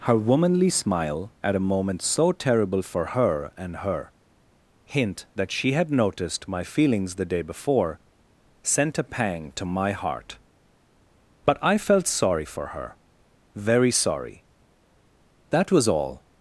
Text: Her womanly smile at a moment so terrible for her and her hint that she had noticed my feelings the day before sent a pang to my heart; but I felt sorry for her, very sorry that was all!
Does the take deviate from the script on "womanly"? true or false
false